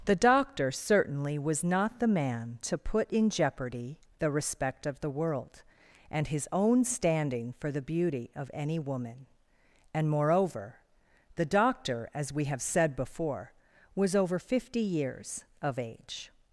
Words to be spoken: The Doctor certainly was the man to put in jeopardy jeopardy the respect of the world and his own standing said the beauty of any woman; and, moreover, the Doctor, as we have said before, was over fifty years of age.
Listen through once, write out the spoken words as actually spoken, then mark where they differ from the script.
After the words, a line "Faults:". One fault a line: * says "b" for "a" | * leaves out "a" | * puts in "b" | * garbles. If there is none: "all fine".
The Doctor certainly was not the man to put in jeopardy the respect of the world and his own standing for the beauty of any woman; and, moreover, the Doctor, as we have said before, was over fifty years of age.
Faults:
* puts in "not"
* leaves out "jeopardy"
* says "for" for "said"